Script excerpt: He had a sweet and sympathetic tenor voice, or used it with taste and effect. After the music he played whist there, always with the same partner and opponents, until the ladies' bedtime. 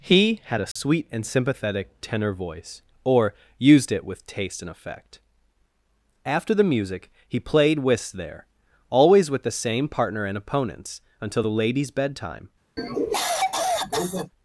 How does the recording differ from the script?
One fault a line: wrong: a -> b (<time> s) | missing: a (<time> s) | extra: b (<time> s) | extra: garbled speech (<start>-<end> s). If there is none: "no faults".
no faults